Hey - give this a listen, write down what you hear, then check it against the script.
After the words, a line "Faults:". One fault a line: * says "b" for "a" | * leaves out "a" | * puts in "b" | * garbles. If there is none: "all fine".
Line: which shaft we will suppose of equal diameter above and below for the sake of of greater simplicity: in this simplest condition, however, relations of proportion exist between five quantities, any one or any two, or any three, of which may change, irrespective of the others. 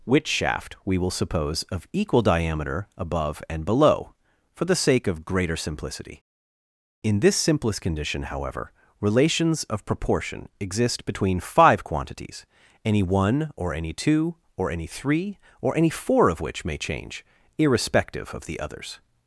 which shaft we will suppose of equal diameter above and below for the sake of greater simplicity: in this simplest condition, however, relations of proportion exist between five quantities, any one or any two, or any three, or any four of which may change, irrespective of the others.
Faults:
* leaves out "of"
* puts in "or any four"